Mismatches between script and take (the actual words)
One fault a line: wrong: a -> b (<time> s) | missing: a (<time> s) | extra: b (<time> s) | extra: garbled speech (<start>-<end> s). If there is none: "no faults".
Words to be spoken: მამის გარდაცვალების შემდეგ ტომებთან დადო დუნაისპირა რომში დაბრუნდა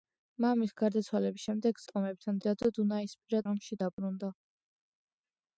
no faults